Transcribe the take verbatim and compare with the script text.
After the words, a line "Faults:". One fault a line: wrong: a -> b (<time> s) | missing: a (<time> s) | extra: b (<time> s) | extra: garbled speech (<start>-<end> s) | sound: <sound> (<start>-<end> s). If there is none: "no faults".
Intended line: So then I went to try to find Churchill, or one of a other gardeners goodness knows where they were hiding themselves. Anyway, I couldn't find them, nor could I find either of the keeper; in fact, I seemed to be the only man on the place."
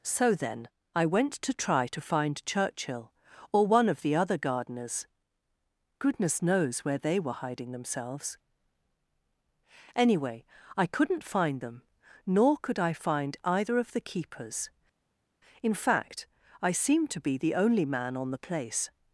So then I went to try to find Churchill, or one of the other gardeners goodness knows where they were hiding themselves. Anyway, I couldn't find them, nor could I find either of the keepers; in fact, I seemed to be the only man on the place."
Faults:
wrong: a -> the (4.0 s)
wrong: keeper -> keepers (14.0 s)